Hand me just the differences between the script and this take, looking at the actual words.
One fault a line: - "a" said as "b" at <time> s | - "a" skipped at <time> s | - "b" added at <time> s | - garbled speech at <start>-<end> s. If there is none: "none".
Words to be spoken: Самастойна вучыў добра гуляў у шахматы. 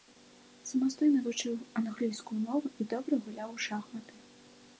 - "англійскую мову і" added at 1.8 s